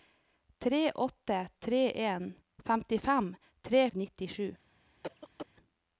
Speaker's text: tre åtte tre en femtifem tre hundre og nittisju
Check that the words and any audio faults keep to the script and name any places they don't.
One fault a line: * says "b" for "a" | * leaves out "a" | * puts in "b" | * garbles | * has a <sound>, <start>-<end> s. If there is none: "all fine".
* leaves out "hundre"
* has a cough, 5.0-5.5 s